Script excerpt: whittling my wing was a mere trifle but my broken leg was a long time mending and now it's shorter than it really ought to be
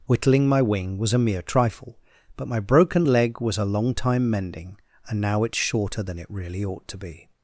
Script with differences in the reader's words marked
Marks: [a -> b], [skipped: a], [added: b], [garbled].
whittling my wing was a mere trifle but my broken leg was a long time mending and now it's shorter than it really ought to be